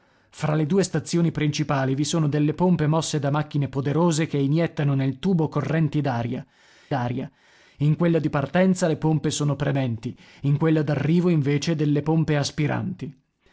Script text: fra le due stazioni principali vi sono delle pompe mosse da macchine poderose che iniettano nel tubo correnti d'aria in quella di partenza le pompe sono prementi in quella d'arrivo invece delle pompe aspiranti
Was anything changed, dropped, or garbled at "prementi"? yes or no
no